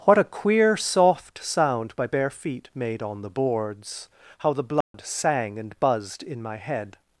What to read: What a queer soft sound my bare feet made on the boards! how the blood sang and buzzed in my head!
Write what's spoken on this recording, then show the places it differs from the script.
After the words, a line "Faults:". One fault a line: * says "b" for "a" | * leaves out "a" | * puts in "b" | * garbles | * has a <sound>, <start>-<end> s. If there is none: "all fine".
What a queer soft sound my bare feet made on the boards! how the blood sang and buzzed in my head!
Faults:
* has a dropout, 4.8-4.9 s